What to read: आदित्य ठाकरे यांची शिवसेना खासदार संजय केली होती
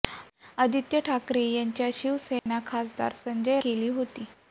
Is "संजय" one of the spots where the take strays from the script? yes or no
no